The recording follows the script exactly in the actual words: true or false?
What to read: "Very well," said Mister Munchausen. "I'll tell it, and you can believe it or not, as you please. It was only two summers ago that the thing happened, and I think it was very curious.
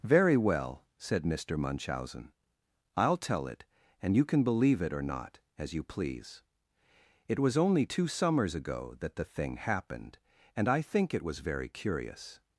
true